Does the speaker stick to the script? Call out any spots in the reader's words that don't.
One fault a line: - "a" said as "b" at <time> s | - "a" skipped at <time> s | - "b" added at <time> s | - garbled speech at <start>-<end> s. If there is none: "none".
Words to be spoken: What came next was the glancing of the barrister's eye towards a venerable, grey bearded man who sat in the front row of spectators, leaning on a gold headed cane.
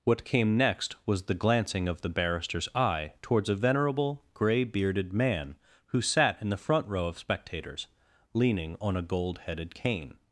none